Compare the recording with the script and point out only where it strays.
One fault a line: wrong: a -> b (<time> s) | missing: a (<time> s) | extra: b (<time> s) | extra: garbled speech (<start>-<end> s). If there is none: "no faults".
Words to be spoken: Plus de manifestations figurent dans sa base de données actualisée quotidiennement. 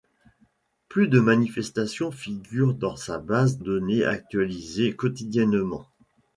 missing: de (3.6 s)